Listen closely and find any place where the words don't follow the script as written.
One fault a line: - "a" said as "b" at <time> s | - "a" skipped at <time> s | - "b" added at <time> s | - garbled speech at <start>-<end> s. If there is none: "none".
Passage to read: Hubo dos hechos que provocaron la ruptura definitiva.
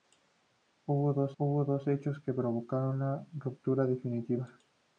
- "hubo dos" added at 1.4 s